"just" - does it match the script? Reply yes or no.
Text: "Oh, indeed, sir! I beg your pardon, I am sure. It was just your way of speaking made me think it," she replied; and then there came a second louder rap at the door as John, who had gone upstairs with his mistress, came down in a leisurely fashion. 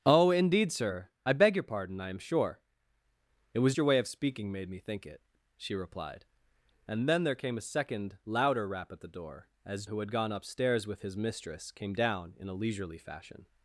no